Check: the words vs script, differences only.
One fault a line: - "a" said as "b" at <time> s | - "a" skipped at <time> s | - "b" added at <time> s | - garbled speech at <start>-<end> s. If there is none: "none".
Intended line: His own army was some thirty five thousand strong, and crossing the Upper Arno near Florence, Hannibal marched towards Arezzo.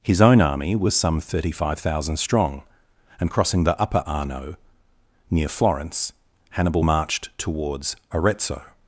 none